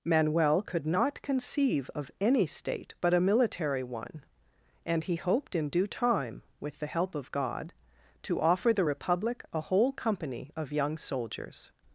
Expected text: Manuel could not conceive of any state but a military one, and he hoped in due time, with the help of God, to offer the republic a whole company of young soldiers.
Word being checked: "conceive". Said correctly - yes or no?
yes